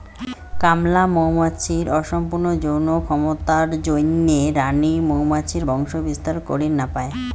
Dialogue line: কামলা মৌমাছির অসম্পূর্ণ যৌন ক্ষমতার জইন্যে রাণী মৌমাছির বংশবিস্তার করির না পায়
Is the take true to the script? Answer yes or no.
yes